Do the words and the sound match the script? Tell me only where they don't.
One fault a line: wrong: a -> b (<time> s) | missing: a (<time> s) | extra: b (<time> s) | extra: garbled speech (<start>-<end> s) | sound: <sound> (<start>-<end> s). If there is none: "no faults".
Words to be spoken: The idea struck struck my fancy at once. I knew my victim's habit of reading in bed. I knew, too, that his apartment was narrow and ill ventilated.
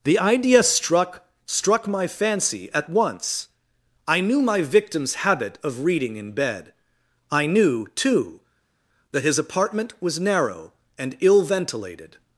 no faults